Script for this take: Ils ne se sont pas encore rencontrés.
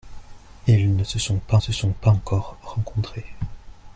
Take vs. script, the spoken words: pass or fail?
fail